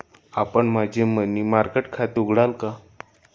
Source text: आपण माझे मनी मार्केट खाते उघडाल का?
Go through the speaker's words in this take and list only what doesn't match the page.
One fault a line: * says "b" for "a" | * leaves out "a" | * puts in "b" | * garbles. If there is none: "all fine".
all fine